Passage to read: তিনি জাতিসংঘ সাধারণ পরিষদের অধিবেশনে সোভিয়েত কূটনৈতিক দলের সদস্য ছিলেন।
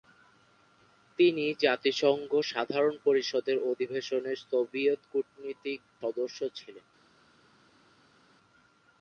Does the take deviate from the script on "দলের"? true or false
true